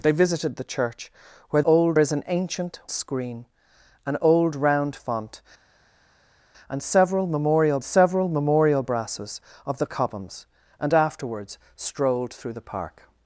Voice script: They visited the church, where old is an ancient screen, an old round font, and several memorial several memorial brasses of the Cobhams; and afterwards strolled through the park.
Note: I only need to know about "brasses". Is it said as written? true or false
true